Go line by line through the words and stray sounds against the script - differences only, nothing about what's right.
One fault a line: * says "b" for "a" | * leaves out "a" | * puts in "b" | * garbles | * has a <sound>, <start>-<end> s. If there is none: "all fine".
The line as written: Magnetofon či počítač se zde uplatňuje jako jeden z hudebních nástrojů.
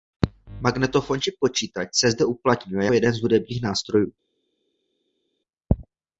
* leaves out "jako"